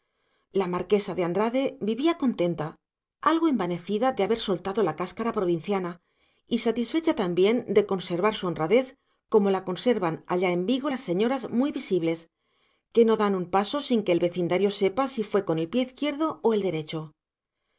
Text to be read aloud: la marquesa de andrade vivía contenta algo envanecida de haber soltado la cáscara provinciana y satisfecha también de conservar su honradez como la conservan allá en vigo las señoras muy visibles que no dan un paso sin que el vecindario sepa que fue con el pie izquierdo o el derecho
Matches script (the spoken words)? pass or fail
fail